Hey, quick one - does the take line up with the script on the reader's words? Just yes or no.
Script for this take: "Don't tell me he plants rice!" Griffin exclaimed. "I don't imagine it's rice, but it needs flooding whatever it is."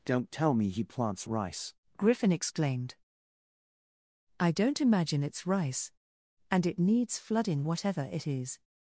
no